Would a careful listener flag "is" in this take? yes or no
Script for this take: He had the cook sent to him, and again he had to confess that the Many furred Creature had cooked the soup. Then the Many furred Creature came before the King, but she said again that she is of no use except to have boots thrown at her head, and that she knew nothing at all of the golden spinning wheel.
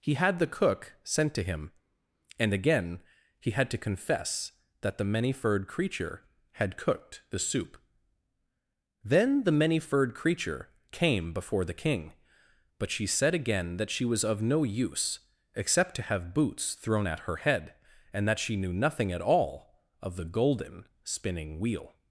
yes